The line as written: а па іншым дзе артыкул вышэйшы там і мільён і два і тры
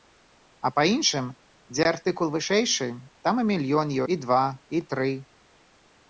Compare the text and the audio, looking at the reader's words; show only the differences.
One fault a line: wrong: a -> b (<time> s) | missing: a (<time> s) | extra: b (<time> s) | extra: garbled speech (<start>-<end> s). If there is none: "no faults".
no faults